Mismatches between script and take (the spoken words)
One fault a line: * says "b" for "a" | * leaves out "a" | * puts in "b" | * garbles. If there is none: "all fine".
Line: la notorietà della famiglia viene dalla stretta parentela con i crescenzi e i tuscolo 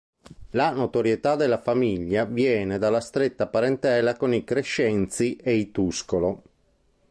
all fine